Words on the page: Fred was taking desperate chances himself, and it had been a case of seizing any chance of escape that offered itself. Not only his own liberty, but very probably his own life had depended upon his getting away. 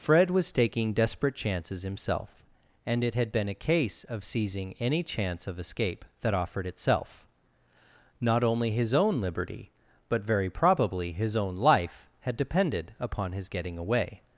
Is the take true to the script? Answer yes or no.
yes